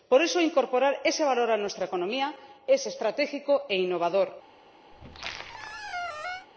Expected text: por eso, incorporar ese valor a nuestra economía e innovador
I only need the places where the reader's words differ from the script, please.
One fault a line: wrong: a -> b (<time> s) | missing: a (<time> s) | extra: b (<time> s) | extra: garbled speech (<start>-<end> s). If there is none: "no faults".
extra: es estratégico (2.7 s)